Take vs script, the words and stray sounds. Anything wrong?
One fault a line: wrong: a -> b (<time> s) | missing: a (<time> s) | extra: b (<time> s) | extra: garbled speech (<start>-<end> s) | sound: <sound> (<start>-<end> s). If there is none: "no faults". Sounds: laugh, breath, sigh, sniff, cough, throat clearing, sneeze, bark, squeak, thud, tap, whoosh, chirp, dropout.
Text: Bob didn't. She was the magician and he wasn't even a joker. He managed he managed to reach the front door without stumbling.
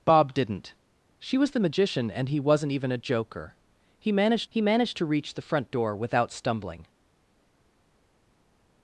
no faults